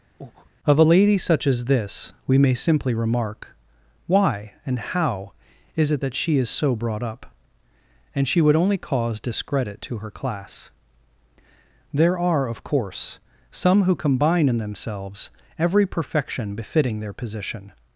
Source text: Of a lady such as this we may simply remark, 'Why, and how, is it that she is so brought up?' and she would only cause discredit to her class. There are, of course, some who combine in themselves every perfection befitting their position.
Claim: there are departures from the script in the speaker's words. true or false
false